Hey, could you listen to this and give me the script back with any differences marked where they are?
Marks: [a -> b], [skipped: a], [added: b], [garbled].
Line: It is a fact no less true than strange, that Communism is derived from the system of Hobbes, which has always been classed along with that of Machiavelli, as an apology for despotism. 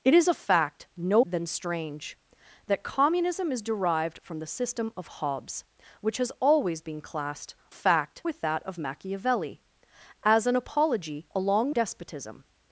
It is a fact no [skipped: less true] than strange, that Communism is derived from the system of Hobbes, which has always been classed [along -> fact] with that of Machiavelli, as an apology [for -> along] despotism.